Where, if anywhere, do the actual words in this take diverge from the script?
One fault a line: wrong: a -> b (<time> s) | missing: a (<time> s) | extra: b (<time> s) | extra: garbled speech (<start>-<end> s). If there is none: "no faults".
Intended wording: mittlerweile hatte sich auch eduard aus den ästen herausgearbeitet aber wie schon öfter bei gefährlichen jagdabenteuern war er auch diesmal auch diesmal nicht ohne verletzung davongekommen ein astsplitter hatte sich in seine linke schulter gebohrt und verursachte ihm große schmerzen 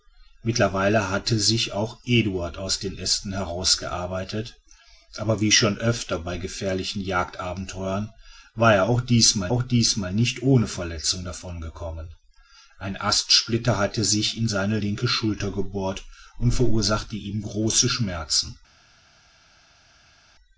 no faults